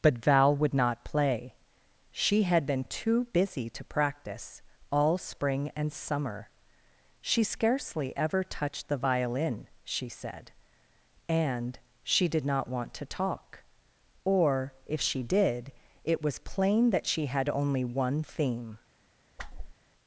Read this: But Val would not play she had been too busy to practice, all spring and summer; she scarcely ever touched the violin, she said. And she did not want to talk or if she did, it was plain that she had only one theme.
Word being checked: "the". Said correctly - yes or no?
yes